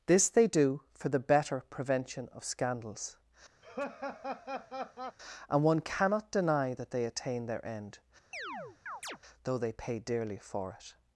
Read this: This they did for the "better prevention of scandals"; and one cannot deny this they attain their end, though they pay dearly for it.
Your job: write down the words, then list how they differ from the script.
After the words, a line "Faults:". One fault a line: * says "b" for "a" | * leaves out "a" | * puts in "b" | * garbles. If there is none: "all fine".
This they do for the "better prevention of scandals"; and one cannot deny that they attain their end, though they pay dearly for it.
Faults:
* says "do" for "did"
* says "that" for "this"